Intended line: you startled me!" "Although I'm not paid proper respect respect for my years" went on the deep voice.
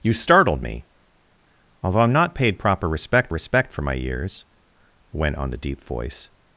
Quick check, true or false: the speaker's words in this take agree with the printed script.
true